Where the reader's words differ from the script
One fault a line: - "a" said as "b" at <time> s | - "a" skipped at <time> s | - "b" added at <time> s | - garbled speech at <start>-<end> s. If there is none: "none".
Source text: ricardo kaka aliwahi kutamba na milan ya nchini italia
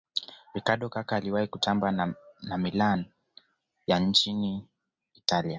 none